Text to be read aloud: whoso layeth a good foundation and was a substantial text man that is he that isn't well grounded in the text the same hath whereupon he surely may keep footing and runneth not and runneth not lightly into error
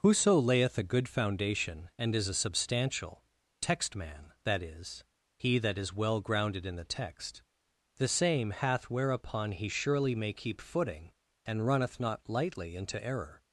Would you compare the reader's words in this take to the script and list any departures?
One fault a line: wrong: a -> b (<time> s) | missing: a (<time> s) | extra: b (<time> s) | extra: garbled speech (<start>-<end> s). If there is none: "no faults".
wrong: was -> is (2.1 s)
wrong: isn't -> is (5.8 s)
missing: and runneth not (12.3 s)